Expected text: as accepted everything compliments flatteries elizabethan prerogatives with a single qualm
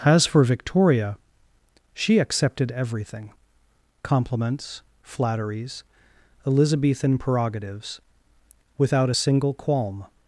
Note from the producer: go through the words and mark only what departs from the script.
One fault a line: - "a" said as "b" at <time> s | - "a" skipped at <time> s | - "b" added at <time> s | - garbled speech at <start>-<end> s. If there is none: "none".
- "for victoria she" added at 0.2 s
- "with" said as "without" at 8.8 s